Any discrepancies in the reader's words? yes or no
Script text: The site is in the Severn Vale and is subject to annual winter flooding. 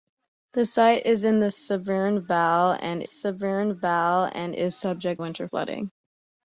yes